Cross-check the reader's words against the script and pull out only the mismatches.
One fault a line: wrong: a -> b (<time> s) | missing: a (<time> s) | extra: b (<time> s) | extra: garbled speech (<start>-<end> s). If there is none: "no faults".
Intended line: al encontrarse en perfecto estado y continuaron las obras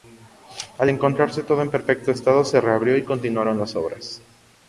extra: todo (1.4 s)
extra: se reabrió (2.4 s)